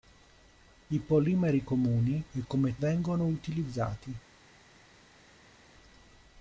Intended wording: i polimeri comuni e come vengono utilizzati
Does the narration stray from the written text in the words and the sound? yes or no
no